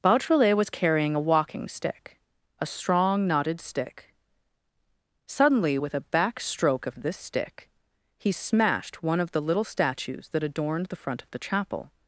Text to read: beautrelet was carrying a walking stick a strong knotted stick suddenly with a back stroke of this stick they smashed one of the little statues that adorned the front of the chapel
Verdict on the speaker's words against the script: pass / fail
fail